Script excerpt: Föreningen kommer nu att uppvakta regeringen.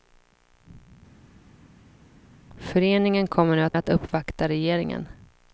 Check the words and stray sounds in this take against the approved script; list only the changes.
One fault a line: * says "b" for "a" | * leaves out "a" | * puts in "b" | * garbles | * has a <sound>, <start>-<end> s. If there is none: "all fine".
* puts in "att"